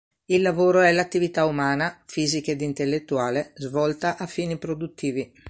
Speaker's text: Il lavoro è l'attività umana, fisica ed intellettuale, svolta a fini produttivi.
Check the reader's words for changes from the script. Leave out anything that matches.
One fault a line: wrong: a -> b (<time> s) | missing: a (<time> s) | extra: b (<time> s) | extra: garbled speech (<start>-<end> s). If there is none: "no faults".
no faults